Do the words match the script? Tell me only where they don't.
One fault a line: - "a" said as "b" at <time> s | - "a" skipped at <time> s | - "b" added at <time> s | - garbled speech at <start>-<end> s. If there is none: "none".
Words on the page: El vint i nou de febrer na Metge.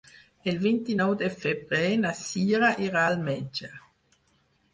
- "Cira irà al" added at 2.2 s